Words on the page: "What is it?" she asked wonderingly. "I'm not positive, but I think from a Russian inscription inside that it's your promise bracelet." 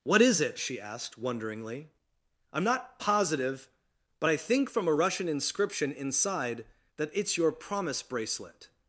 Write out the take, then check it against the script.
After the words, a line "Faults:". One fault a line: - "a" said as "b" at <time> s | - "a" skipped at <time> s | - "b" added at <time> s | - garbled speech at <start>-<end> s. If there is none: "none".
"What is it?" she asked wonderingly. "I'm not positive, but I think from a Russian inscription inside that it's your promise bracelet."
Faults:
none